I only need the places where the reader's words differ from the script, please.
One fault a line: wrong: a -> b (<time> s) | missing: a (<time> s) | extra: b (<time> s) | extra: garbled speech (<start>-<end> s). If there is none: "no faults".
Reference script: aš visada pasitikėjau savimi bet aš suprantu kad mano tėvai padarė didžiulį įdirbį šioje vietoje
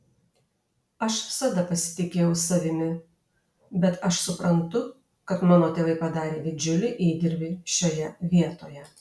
no faults